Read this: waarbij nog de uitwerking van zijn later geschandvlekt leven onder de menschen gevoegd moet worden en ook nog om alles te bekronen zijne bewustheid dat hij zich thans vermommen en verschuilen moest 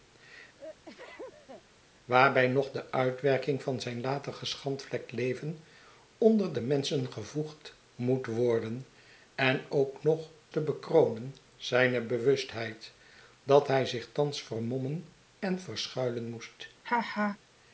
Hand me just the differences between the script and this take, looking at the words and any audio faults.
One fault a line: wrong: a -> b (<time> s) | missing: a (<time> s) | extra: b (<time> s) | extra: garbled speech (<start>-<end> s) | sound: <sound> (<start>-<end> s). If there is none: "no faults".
sound: sneeze (0.6-1.6 s)
missing: om alles (10.3 s)
sound: laugh (16.8-17.4 s)